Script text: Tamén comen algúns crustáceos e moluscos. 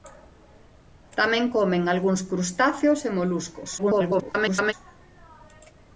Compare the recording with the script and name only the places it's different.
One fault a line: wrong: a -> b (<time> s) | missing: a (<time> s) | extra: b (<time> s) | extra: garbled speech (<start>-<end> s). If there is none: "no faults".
extra: garbled speech (3.8-4.7 s)